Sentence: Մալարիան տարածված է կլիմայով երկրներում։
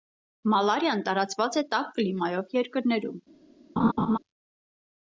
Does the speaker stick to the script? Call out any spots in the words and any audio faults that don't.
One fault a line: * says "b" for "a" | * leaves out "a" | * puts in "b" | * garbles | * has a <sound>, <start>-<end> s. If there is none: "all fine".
* puts in "տաք"
* has a laugh, 3.8-4.2 s